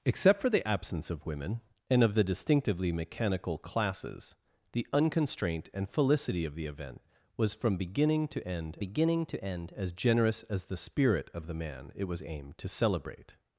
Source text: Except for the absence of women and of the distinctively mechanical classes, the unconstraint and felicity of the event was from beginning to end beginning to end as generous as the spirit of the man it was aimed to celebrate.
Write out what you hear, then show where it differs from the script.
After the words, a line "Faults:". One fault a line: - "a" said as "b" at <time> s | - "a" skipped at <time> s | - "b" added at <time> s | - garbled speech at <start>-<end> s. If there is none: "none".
Except for the absence of women and of the distinctively mechanical classes, the unconstraint and felicity of the event was from beginning to end beginning to end as generous as the spirit of the man it was aimed to celebrate.
Faults:
none